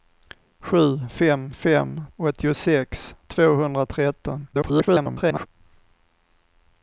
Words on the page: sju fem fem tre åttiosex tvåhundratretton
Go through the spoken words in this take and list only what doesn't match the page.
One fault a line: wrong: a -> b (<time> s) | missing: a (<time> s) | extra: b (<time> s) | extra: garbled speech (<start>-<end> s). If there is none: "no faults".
missing: tre (2.0 s)
extra: garbled speech (4.5-5.5 s)